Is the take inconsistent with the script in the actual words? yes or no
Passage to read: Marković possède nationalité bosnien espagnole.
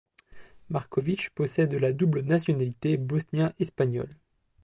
yes